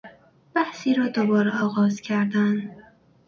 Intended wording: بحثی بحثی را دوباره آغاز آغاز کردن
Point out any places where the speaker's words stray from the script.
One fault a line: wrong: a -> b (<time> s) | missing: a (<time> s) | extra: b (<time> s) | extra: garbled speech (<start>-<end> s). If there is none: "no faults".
missing: بحثی (0.9 s)
missing: آغاز (2.0 s)